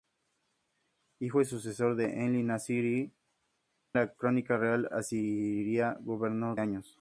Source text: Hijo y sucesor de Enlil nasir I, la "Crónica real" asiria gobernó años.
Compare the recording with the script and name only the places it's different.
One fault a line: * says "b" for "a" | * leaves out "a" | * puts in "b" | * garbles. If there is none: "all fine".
all fine